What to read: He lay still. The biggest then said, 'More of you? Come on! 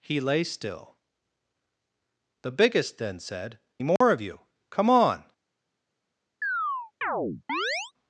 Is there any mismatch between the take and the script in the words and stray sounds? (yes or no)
yes